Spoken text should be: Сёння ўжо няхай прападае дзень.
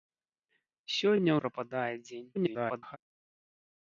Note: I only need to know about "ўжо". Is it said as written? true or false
false